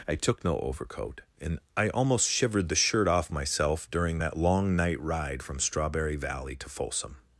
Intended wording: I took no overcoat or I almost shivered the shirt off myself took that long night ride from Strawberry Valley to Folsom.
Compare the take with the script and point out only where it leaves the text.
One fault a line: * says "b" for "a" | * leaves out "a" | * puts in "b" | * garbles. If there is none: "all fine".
* says "and" for "or"
* says "during" for "took"